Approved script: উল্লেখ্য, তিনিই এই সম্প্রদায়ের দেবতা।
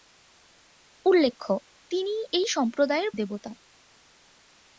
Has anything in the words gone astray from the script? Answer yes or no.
no